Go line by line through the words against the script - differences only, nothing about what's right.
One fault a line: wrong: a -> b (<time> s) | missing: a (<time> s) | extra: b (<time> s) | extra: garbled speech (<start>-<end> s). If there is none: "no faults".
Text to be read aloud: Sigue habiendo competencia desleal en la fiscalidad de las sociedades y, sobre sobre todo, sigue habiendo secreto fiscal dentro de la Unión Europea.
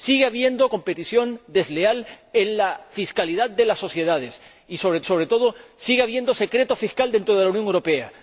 no faults